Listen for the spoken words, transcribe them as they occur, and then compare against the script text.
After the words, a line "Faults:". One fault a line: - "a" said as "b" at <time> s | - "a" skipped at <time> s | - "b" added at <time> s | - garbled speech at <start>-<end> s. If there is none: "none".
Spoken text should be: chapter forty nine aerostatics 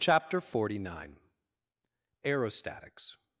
chapter forty nine aerostatics
Faults:
none